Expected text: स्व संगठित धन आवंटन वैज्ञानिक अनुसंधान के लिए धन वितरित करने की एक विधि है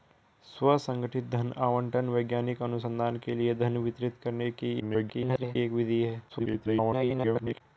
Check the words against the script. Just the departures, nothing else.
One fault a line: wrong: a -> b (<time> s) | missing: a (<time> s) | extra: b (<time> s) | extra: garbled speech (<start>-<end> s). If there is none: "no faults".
extra: garbled speech (4.8-5.6 s)
extra: garbled speech (6.3-7.6 s)